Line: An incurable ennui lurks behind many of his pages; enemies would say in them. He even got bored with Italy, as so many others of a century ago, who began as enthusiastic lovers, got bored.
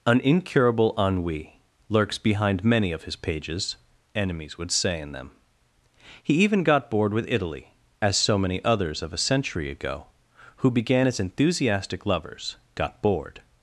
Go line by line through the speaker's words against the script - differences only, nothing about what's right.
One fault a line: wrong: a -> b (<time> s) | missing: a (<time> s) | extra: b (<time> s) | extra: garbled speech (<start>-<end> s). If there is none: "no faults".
no faults